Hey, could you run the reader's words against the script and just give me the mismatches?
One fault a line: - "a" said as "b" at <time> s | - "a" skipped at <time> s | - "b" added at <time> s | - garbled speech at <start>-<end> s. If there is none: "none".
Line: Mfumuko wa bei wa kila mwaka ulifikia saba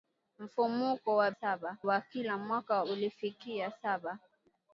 - "bei" said as "saba" at 1.3 s